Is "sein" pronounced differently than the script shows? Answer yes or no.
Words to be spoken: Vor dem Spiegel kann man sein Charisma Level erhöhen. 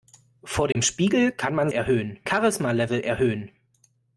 yes